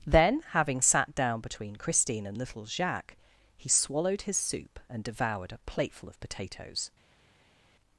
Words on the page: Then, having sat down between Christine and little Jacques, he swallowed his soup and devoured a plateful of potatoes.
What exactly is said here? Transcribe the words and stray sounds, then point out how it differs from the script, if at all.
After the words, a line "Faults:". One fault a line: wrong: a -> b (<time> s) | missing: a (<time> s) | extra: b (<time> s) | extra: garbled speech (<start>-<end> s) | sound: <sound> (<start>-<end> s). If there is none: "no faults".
Then, having sat down between Christine and little Jacques, he swallowed his soup and devoured a plateful of potatoes.
Faults:
no faults